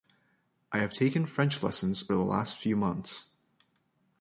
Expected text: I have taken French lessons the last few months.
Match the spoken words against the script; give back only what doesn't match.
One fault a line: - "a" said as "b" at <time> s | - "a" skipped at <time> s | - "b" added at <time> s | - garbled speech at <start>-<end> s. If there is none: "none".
none